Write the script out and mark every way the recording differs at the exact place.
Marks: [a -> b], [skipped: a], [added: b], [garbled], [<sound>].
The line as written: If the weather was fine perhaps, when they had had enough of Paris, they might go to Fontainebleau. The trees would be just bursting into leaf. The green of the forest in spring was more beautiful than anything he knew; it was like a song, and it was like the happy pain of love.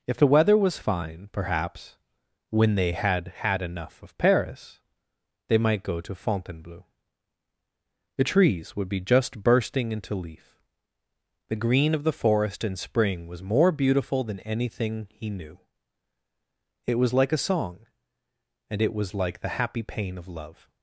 If the weather was fine perhaps, when they had had enough of Paris, they might go to Fontainebleau. The trees would be just bursting into leaf. The green of the forest in spring was more beautiful than anything he knew; it was like a song, and it was like the happy pain of love.